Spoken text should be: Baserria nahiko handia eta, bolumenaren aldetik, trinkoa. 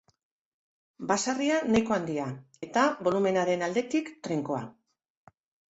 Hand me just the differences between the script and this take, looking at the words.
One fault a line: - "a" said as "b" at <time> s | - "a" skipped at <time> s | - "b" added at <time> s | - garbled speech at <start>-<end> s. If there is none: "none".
none